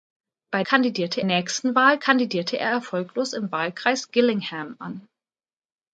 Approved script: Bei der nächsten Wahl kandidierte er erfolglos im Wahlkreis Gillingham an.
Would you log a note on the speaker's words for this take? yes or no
yes